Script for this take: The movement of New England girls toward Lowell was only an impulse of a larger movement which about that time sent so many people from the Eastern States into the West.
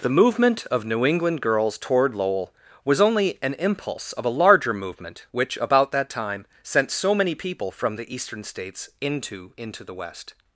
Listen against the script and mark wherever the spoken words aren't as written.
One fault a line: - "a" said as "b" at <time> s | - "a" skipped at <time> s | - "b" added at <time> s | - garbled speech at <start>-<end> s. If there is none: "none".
- "into" added at 9.6 s